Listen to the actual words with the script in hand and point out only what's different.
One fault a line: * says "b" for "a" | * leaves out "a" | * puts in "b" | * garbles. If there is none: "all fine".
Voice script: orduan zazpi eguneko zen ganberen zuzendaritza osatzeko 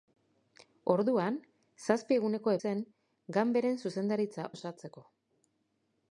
all fine